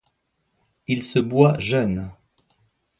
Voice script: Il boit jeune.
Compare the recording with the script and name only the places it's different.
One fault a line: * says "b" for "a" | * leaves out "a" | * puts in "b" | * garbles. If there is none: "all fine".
* puts in "se"